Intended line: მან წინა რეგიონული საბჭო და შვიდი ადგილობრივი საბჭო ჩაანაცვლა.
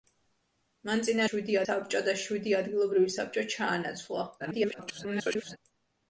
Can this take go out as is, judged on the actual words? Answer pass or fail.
fail